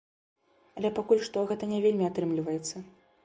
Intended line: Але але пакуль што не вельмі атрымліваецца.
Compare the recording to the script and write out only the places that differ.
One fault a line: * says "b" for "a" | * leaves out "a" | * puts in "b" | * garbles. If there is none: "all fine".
* leaves out "але"
* puts in "гэта"